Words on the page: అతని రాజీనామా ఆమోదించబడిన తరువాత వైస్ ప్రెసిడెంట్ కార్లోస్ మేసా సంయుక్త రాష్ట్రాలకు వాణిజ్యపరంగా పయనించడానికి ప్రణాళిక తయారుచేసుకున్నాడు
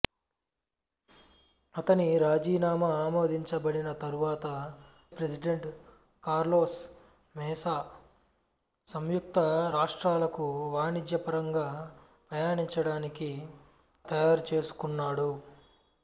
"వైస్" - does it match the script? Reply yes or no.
no